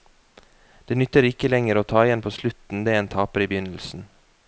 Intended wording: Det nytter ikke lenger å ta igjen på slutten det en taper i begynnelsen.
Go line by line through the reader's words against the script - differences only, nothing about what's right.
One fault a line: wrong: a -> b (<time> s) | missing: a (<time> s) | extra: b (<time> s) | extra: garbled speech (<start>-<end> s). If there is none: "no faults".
no faults